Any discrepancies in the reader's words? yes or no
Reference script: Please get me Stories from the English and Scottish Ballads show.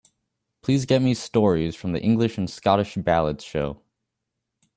no